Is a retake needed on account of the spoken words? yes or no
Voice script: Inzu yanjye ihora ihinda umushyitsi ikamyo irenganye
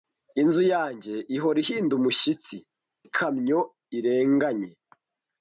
no